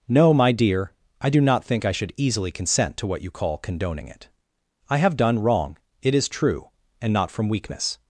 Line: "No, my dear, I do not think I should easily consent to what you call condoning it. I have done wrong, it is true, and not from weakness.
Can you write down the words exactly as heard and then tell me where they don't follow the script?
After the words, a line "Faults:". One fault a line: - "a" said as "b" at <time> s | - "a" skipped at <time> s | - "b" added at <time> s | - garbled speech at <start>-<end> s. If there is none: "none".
"No, my dear, I do not think I should easily consent to what you call condoning it. I have done wrong, it is true, and not from weakness.
Faults:
none